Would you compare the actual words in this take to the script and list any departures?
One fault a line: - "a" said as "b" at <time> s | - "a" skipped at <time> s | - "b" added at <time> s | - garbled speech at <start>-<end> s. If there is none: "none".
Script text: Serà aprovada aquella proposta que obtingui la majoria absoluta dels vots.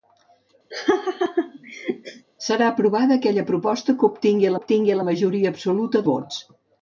- "obtingui" added at 4.6 s
- "dels" skipped at 6.1 s